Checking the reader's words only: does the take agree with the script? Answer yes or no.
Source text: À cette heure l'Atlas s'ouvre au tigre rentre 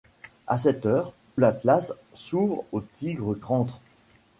yes